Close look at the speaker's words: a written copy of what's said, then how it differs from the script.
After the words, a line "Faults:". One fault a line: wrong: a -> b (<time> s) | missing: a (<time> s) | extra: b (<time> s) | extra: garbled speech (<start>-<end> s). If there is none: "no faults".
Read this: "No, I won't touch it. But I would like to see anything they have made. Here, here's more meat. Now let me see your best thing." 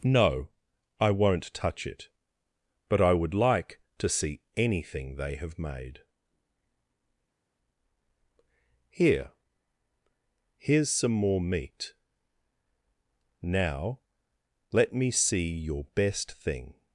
"No, I won't touch it. But I would like to see anything they have made. Here, here's some more meat. Now let me see your best thing."
Faults:
extra: some (10.9 s)